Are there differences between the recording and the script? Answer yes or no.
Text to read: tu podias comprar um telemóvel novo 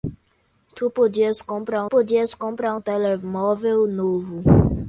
yes